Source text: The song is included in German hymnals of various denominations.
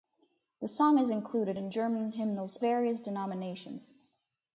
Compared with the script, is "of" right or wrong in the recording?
wrong